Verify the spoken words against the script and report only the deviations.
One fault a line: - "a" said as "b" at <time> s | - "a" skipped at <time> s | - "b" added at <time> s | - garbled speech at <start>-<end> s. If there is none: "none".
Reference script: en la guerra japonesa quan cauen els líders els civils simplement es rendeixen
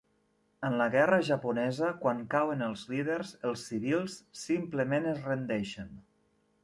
none